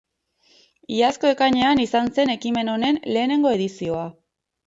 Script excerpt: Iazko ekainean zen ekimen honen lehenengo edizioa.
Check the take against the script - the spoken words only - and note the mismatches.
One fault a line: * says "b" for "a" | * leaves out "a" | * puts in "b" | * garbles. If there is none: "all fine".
* puts in "izan"